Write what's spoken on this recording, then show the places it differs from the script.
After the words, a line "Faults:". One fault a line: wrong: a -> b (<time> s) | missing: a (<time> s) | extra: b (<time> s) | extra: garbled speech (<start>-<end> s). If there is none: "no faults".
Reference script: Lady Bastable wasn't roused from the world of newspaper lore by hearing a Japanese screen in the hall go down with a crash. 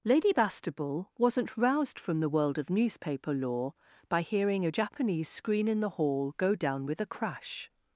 Lady Bastable wasn't roused from the world of newspaper lore by hearing a Japanese screen in the hall go down with a crash.
Faults:
no faults